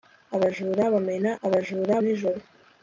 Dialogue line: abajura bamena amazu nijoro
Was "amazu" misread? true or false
true